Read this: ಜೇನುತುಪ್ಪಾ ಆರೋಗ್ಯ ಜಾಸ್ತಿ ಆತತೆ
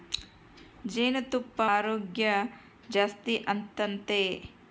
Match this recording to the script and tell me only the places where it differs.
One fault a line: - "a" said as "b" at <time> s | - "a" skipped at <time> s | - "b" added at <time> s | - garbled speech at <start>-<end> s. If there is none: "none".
none